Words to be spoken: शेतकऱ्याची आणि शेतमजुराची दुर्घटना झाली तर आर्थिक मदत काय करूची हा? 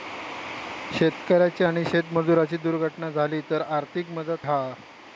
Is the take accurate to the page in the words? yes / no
no